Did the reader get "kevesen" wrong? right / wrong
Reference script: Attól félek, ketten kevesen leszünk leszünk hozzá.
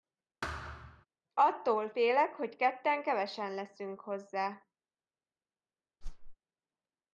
right